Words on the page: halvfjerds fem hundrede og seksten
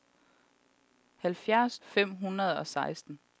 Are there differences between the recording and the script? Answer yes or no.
no